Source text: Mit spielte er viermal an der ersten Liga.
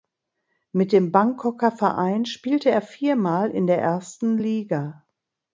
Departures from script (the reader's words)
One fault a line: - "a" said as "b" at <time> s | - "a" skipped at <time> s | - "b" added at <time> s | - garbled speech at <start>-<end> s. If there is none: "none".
- "dem Bangkoker Verein" added at 0.9 s
- "an" said as "in" at 3.5 s